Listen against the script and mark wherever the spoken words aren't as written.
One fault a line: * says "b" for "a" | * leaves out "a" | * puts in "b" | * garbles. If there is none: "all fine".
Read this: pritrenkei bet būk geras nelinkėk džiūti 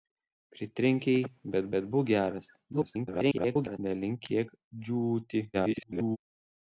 * puts in "bet"
* garbles
* garbles